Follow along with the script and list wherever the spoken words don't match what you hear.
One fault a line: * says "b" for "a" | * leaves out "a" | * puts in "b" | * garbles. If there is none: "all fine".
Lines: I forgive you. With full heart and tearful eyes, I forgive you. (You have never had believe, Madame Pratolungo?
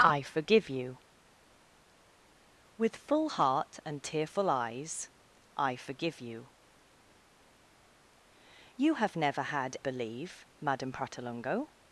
all fine